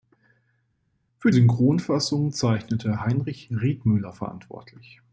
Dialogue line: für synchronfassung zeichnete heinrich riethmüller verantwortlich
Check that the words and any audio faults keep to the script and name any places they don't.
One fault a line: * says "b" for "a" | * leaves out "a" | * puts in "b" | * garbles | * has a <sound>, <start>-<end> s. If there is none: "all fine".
all fine